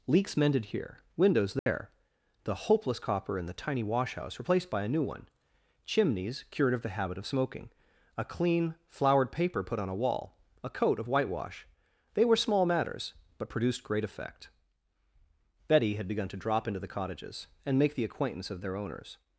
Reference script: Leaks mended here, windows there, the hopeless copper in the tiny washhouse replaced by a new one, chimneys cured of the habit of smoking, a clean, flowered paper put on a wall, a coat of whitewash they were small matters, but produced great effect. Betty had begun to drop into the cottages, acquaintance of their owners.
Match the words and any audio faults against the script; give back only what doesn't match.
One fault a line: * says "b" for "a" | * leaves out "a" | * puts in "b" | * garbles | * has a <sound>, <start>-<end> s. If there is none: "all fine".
* has a dropout, 1.6-1.7 s
* puts in "and make the"